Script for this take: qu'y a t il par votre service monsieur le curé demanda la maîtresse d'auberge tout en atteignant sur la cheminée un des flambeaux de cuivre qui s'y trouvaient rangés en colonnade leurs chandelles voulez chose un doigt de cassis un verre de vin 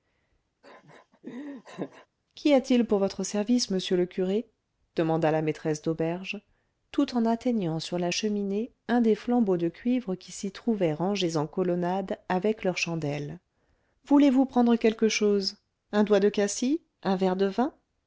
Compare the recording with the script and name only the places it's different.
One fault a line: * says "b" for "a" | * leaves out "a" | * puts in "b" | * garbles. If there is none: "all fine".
* says "pour" for "par"
* puts in "avec"
* puts in "vous prendre quelque"